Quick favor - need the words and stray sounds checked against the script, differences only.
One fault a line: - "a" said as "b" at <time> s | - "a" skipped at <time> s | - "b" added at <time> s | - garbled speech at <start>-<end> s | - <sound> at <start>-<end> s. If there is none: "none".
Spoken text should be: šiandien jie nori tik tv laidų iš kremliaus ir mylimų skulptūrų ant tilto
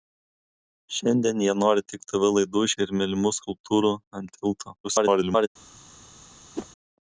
- "kremliaus" skipped at 2.8 s
- garbled speech at 4.8-5.5 s
- whoosh at 6.6-6.7 s